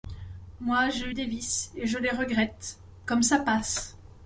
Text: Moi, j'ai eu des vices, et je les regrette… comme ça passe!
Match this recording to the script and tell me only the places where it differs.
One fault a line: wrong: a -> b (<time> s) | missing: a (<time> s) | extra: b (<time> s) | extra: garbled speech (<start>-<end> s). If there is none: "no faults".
no faults